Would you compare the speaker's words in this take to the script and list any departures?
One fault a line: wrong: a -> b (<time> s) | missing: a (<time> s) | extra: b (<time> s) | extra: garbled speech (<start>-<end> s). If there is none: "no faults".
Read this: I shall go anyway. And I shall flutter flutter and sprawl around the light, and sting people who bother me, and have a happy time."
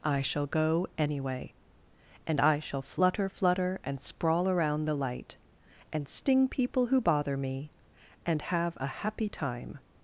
no faults